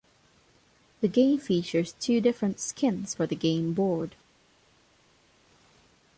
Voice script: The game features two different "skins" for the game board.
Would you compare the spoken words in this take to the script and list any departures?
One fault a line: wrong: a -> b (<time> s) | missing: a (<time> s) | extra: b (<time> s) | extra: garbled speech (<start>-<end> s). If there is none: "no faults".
no faults